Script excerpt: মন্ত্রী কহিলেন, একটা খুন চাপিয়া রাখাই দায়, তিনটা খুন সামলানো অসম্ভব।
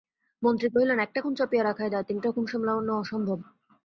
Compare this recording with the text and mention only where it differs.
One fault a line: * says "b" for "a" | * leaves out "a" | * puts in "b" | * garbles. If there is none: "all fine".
all fine